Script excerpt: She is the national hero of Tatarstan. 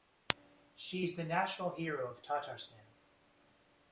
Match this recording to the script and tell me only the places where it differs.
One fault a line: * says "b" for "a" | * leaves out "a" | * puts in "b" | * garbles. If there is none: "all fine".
all fine